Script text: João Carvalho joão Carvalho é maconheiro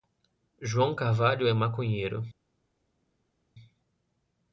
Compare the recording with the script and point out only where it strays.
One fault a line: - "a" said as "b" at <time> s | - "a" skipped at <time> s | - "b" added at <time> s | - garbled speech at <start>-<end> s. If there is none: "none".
- "joão Carvalho" skipped at 1.5 s